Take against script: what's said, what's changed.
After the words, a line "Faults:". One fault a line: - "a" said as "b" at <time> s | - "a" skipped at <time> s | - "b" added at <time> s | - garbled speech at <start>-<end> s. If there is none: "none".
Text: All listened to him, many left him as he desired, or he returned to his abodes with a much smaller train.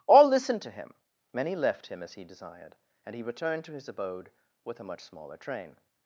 All listened to him, many left him as he desired, and he returned to his abode with a much smaller train.
Faults:
- "or" said as "and" at 3.0 s
- "abodes" said as "abode" at 3.9 s